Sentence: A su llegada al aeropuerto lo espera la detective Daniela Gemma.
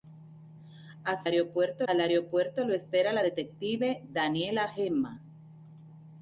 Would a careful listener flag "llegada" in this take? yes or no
yes